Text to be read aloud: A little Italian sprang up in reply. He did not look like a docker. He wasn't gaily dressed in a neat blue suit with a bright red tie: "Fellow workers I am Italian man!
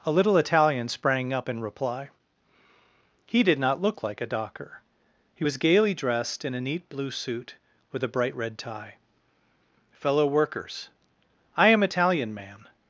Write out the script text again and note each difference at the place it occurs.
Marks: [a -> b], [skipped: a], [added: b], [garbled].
A little Italian sprang up in reply. He did not look like a docker. He [wasn't -> was] gaily dressed in a neat blue suit with a bright red tie: "Fellow workers I am Italian man!